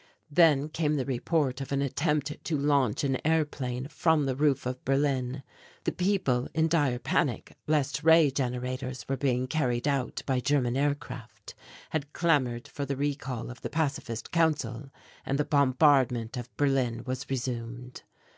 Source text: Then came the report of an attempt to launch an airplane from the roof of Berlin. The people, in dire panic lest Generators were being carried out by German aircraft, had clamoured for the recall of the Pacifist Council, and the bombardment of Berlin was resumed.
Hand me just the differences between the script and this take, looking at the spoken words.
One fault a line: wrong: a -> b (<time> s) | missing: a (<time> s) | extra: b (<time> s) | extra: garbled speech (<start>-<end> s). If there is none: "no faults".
extra: Ray (8.0 s)